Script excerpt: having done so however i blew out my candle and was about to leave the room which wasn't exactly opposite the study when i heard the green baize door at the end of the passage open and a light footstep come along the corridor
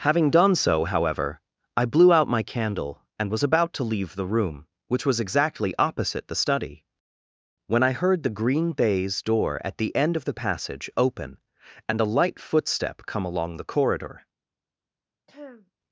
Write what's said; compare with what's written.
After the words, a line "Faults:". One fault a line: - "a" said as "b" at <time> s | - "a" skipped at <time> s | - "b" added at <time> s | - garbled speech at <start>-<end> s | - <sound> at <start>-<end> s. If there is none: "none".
having done so however i blew out my candle and was about to leave the room which was exactly opposite the study when i heard the green baize door at the end of the passage open and a light footstep come along the corridor
Faults:
- "wasn't" said as "was" at 5.0 s
- throat clearing at 15.3-15.7 s